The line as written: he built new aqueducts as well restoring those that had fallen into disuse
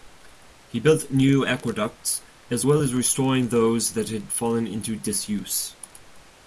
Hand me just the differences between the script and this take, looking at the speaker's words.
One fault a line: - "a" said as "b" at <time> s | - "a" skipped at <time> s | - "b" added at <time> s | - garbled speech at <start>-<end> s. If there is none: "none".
- "as" added at 2.8 s